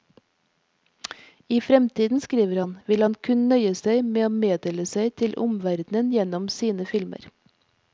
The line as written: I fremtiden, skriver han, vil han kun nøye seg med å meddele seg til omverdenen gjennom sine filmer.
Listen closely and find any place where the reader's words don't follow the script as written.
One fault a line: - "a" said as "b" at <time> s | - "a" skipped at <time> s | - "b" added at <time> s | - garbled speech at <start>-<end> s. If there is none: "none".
none